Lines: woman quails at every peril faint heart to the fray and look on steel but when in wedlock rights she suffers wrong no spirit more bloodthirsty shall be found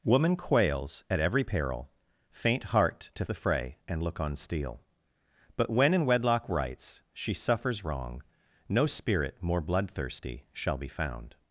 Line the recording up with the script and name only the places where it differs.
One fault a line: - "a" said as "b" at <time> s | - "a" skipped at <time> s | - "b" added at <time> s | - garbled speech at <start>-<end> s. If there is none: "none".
none